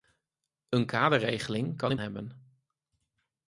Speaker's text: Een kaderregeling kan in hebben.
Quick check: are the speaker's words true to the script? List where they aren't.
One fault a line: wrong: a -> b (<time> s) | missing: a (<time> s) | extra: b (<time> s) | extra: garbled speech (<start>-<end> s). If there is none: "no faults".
no faults